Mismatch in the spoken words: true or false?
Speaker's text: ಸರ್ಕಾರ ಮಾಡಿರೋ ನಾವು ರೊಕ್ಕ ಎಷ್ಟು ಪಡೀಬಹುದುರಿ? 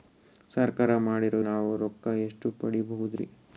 false